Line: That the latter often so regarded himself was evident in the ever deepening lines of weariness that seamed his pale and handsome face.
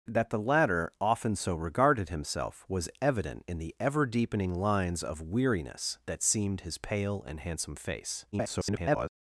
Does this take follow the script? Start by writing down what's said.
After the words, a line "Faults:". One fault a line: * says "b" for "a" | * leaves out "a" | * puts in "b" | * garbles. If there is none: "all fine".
That the latter often so regarded himself was evident in the ever deepening lines of weariness that seamed his pale and handsome face. [garbled]
Faults:
* garbles